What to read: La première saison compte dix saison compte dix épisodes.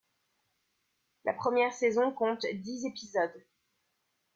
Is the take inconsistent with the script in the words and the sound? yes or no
yes